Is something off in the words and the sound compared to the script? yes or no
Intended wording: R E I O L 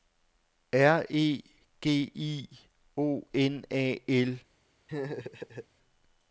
yes